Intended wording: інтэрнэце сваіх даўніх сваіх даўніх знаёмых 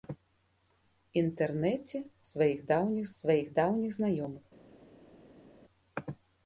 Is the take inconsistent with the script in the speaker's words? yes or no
no